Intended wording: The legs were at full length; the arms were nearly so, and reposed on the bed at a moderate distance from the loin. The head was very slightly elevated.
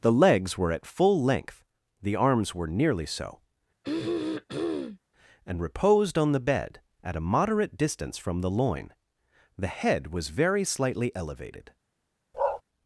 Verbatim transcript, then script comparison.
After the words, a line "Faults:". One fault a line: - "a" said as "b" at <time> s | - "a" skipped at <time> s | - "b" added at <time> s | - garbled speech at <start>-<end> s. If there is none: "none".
The legs were at full length; the arms were nearly so, and reposed on the bed at a moderate distance from the loin. The head was very slightly elevated.
Faults:
none